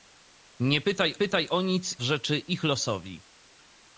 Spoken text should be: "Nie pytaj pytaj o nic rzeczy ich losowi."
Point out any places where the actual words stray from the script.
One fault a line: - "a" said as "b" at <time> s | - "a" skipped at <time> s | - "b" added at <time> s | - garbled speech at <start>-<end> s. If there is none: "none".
none